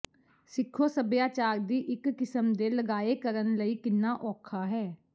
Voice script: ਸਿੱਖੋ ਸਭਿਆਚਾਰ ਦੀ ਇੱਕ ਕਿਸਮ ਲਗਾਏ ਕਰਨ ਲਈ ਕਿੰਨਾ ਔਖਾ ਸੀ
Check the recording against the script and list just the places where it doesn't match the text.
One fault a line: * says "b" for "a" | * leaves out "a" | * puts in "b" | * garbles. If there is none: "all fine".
* puts in "ਦੇ"
* says "ਹੈ" for "ਸੀ"